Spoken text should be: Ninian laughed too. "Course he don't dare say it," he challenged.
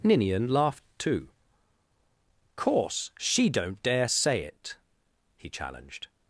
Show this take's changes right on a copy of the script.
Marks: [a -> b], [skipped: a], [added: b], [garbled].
Ninian laughed too. "Course [he -> she] don't dare say it," he challenged.